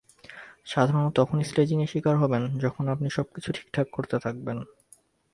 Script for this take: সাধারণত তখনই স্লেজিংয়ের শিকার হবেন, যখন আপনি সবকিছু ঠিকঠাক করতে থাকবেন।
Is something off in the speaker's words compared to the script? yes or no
no